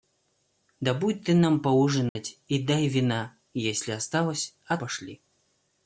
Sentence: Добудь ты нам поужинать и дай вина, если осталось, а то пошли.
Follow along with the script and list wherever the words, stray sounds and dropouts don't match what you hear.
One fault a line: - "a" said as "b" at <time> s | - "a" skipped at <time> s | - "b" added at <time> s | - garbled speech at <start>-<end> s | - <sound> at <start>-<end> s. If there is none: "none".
- dropout at 2.1-2.2 s
- "то" skipped at 4.8 s